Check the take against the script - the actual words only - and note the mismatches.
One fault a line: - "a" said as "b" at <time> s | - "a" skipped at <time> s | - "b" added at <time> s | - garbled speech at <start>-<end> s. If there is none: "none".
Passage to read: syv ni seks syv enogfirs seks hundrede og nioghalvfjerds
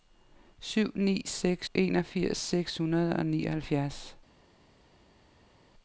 - "syv" skipped at 1.7 s